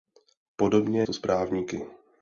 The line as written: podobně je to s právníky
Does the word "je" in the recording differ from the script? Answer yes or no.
yes